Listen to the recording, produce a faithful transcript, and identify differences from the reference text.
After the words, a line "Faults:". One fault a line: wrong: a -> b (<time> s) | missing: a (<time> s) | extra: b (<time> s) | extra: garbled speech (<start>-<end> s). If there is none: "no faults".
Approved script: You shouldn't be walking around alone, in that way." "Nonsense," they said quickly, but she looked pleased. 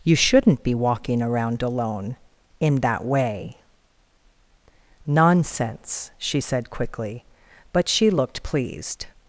You shouldn't be walking around alone, in that way." "Nonsense," she said quickly, but she looked pleased.
Faults:
wrong: they -> she (6.2 s)